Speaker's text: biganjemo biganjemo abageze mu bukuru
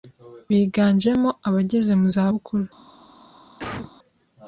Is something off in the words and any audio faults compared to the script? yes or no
yes